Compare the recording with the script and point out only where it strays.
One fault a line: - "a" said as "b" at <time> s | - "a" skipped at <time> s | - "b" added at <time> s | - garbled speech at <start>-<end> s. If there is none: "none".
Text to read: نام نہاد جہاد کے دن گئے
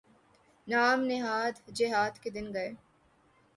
none